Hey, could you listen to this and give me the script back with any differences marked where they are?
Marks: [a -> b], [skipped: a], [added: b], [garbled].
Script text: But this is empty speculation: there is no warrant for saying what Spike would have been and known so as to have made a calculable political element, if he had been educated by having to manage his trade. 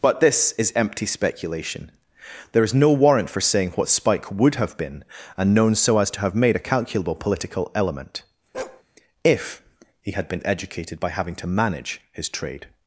But this is empty speculation: there is no warrant for saying what Spike would have been and known so as to have made a calculable political element, if he had been educated by having to manage his trade.